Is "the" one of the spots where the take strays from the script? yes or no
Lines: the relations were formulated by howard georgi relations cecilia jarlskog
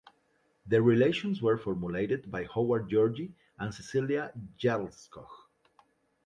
no